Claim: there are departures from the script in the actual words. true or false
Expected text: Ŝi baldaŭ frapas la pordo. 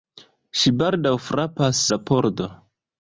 false